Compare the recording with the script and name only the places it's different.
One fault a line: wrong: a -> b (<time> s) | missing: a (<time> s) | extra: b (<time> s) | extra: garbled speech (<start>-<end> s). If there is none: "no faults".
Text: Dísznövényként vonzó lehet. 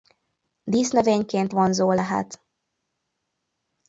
no faults